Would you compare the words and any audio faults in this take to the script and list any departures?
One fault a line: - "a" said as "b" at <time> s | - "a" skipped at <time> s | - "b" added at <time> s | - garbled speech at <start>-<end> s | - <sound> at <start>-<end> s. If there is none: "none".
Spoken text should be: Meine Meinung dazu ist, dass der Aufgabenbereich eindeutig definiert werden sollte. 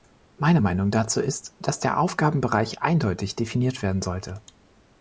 none